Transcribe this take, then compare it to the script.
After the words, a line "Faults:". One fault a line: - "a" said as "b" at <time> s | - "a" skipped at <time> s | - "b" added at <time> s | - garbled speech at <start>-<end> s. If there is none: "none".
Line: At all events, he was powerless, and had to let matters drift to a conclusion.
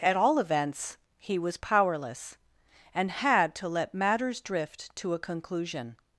At all events, he was powerless, and had to let matters drift to a conclusion.
Faults:
none